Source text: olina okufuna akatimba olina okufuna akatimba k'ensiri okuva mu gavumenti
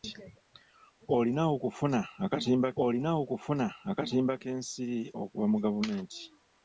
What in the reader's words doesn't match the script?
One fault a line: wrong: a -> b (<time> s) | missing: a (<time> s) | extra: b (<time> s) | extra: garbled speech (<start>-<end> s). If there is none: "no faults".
no faults